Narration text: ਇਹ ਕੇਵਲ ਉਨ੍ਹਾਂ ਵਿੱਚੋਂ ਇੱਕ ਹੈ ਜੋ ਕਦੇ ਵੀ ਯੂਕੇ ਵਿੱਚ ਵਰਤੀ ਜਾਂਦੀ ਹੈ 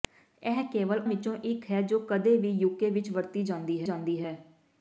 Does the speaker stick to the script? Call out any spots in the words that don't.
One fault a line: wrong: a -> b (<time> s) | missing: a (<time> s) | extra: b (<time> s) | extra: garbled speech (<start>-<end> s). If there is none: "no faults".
missing: ਉਨ੍ਹਾਂ (1.0 s)
extra: ਜਾਂਦੀ (3.8 s)